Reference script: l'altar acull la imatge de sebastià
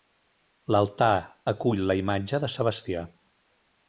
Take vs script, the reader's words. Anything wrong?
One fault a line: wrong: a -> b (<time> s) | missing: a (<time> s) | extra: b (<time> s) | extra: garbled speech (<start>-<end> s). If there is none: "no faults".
no faults